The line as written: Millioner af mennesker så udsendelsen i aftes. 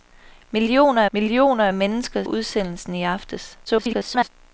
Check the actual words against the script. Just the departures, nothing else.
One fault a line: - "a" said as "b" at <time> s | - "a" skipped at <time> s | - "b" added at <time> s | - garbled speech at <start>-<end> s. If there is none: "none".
- "millioner" added at 1.1 s
- "så" skipped at 2.2 s
- garbled speech at 3.7-4.3 s